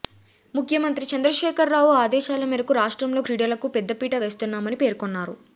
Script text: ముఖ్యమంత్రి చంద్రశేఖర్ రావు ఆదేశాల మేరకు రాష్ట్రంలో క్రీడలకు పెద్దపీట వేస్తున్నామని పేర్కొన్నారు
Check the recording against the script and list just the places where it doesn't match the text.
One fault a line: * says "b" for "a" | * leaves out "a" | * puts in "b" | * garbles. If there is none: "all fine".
all fine